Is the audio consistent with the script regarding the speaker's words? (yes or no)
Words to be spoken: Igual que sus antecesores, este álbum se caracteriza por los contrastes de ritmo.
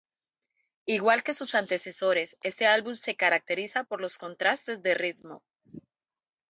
yes